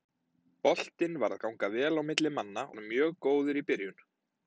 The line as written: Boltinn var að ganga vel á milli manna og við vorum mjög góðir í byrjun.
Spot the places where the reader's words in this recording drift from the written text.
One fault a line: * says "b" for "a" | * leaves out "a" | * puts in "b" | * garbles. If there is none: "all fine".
* leaves out "og við"